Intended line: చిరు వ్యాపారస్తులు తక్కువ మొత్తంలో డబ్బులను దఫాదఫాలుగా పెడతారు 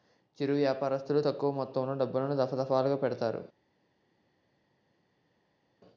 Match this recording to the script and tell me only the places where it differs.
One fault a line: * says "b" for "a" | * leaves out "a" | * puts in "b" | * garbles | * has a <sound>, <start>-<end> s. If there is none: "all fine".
all fine